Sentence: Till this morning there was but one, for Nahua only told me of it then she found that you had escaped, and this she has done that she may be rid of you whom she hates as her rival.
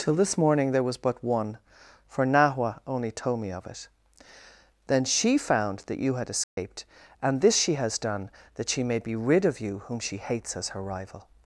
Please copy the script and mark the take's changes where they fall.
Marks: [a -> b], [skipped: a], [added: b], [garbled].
Till this morning there was but one, for Nahua only told me of it then she found that you had escaped, and this she has done that she may be rid of you whom she hates as her rival.